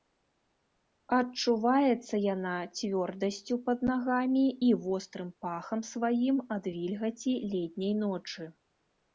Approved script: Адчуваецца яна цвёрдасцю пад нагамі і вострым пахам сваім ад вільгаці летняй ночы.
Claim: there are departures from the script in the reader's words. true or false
false